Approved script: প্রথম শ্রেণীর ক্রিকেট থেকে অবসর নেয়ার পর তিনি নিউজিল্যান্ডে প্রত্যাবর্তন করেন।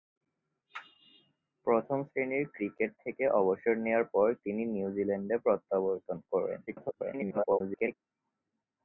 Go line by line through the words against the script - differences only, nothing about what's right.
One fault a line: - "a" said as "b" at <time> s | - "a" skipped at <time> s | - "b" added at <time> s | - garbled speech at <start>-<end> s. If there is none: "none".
- garbled speech at 6.7-8.0 s